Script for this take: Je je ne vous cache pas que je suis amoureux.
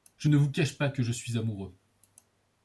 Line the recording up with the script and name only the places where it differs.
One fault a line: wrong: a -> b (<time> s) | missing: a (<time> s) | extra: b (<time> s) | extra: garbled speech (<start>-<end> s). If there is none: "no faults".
missing: je (0.3 s)